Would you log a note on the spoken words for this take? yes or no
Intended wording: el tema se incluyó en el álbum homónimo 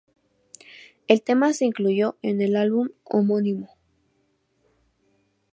no